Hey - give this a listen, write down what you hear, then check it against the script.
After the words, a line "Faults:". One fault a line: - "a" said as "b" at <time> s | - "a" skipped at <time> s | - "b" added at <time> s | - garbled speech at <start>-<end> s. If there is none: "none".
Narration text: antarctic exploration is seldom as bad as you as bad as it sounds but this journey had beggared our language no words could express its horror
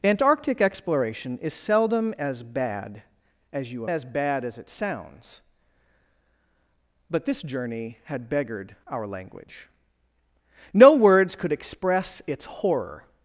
antarctic exploration is seldom as bad as you as bad as it sounds but this journey had beggared our language no words could express its horror
Faults:
none